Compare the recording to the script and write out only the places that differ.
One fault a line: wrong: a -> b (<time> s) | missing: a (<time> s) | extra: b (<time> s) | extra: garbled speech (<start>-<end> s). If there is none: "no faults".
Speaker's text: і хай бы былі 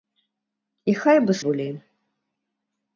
no faults